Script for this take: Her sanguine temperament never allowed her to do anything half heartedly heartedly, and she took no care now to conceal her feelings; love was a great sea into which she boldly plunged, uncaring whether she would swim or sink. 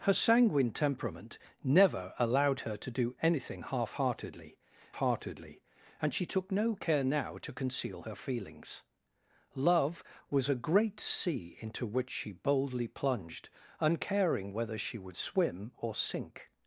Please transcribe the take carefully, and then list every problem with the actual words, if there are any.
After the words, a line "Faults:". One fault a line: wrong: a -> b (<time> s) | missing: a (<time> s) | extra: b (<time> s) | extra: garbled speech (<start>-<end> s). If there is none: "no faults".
Her sanguine temperament never allowed her to do anything half heartedly heartedly, and she took no care now to conceal her feelings; love was a great sea into which she boldly plunged, uncaring whether she would swim or sink.
Faults:
no faults